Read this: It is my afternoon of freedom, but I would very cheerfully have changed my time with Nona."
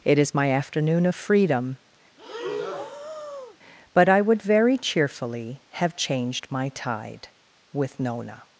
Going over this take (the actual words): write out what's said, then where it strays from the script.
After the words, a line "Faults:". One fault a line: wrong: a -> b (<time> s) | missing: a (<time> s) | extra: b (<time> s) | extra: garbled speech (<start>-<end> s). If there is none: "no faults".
It is my afternoon of freedom, but I would very cheerfully have changed my tide with Nona."
Faults:
wrong: time -> tide (6.7 s)